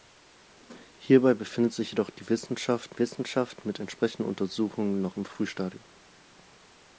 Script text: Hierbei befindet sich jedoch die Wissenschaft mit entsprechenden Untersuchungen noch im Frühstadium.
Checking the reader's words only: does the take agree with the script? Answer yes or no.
no